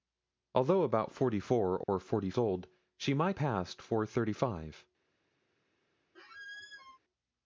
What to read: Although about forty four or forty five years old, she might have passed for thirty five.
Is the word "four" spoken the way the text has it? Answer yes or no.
yes